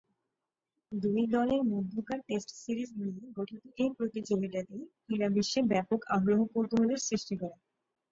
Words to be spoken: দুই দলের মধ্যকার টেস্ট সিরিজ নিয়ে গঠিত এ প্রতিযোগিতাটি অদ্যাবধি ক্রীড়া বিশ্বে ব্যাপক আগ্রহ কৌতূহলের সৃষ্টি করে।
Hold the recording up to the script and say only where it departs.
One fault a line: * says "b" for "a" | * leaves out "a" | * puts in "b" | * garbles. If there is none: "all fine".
* leaves out "অদ্যাবধি"